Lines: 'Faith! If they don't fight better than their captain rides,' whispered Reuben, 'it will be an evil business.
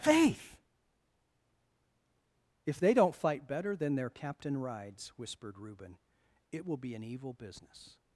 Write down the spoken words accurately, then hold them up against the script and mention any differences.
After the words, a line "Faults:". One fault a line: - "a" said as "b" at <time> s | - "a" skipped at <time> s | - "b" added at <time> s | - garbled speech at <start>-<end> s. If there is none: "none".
'Faith! If they don't fight better than their captain rides,' whispered Reuben, 'it will be an evil business.
Faults:
none